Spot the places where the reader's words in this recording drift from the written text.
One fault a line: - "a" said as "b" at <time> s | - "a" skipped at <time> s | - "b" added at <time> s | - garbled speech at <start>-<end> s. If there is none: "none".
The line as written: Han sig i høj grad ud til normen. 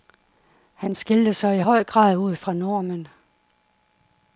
- "skilte" added at 0.9 s
- "til" said as "fra" at 2.3 s